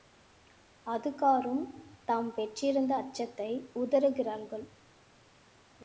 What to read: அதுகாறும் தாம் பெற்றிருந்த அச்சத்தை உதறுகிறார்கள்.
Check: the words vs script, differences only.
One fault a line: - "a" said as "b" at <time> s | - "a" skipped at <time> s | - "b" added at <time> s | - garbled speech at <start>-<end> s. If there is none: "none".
none